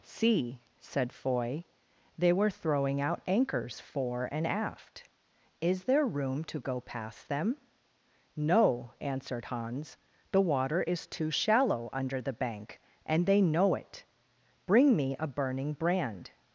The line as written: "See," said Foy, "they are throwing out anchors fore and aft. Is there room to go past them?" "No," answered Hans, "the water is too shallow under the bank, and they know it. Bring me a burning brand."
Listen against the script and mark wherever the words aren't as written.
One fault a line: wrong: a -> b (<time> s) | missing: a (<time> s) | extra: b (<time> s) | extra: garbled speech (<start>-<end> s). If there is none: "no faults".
wrong: are -> were (2.3 s)